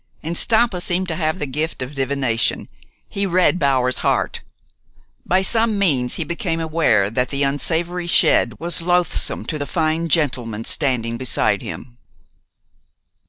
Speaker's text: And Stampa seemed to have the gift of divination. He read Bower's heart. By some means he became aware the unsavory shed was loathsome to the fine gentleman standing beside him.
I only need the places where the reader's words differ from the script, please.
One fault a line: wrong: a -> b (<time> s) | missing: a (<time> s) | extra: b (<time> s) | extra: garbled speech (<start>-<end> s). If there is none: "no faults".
extra: that (7.1 s)